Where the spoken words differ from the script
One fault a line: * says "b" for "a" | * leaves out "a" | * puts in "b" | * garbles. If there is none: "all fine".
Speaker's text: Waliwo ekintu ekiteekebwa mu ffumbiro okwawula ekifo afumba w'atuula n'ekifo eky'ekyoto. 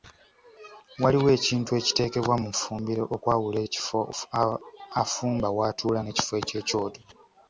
all fine